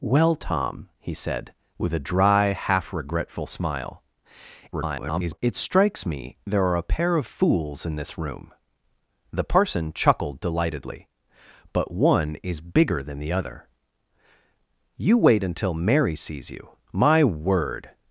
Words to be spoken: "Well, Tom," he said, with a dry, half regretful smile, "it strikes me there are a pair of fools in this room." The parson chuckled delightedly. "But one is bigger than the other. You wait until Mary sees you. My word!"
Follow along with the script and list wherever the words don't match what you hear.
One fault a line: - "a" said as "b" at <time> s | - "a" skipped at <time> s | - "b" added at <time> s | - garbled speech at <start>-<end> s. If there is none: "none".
- garbled speech at 4.7-5.4 s